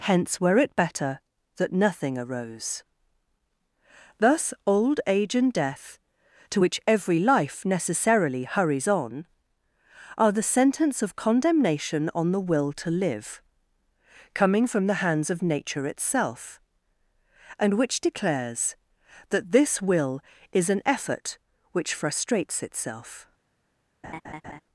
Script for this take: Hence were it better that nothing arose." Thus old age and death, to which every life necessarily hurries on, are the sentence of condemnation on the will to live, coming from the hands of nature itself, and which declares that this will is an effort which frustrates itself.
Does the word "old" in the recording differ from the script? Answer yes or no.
no